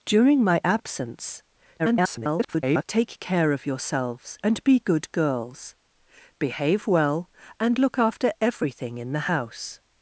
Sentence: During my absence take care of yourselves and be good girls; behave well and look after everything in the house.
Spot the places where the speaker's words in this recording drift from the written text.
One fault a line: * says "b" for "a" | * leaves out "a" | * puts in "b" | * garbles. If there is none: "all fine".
* garbles